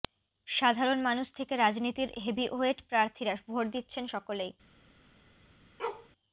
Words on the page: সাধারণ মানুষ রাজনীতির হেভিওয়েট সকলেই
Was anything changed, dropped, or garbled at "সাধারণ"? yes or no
no